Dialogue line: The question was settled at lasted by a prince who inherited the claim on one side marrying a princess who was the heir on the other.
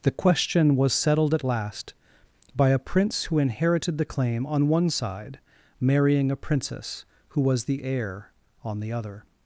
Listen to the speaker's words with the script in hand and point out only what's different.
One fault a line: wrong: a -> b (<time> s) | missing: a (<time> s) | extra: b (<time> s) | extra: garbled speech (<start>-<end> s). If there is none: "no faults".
wrong: lasted -> last (1.4 s)